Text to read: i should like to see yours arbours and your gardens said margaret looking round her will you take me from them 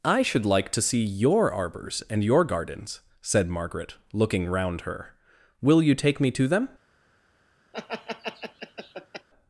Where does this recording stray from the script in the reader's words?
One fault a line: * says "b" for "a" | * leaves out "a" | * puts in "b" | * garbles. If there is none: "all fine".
* says "your" for "yours"
* says "to" for "from"